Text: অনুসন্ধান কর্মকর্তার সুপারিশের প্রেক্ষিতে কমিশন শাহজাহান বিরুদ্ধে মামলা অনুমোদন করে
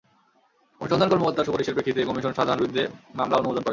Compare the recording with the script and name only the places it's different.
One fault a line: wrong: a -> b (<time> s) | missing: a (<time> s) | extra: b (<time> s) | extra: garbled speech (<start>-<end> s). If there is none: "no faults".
no faults